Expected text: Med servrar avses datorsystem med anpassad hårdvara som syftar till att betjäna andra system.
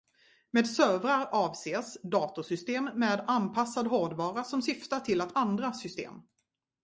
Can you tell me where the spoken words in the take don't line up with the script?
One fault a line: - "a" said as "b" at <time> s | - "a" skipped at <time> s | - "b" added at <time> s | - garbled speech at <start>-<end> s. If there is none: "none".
- "betjäna" skipped at 5.3 s